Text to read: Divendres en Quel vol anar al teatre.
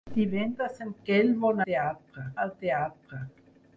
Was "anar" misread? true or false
true